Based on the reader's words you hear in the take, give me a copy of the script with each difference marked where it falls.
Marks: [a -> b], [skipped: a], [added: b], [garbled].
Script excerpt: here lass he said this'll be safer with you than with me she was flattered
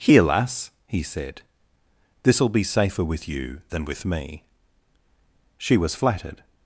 here lass he said this'll be safer with you than with me she was flattered